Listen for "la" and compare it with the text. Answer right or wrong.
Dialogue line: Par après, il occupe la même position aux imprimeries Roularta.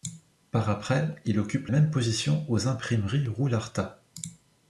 wrong